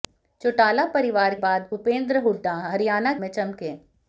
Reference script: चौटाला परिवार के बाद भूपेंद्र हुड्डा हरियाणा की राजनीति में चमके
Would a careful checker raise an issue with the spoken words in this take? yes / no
yes